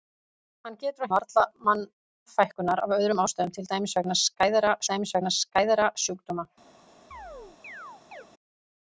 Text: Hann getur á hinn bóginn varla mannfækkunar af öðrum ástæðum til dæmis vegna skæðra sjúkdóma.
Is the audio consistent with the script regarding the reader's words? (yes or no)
no